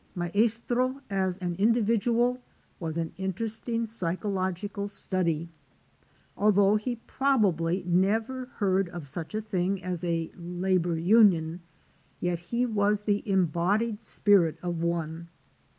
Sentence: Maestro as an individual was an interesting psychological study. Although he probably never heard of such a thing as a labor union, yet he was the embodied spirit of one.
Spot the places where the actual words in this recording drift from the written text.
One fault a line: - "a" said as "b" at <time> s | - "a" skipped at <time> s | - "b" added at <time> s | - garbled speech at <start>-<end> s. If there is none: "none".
none